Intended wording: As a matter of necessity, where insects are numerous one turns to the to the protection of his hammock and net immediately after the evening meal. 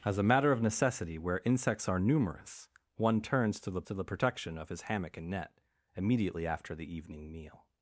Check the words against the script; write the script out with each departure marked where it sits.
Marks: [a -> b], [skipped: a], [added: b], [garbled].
As a matter of necessity, where insects are numerous one turns to the to the protection of his hammock and net immediately after the evening meal.